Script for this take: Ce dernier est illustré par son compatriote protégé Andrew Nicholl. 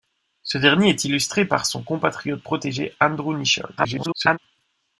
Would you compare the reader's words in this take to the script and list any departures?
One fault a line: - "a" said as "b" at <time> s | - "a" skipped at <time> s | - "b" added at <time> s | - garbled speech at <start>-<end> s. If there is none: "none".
- garbled speech at 3.8-4.4 s